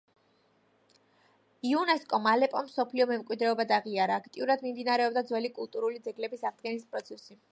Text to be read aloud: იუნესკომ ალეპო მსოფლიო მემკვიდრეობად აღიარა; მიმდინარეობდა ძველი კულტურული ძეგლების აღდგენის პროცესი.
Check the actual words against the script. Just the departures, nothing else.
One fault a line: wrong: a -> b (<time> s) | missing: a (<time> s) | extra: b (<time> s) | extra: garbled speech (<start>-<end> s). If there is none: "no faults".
extra: აქტიურად (4.2 s)